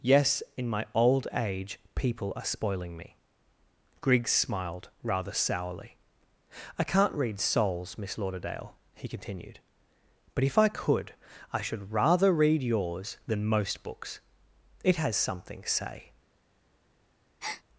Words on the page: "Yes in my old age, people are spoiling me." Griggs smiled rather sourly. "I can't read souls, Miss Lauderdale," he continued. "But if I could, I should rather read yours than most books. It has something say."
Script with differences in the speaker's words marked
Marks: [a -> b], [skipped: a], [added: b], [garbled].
"Yes in my old age, people are spoiling me." Griggs smiled rather sourly. "I can't read souls, Miss Lauderdale," he continued. "But if I could, I should rather read yours than most books. It has something say."